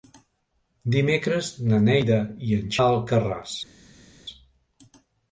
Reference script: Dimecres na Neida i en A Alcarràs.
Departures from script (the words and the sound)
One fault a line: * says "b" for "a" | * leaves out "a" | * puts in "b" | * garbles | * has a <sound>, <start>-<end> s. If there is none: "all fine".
all fine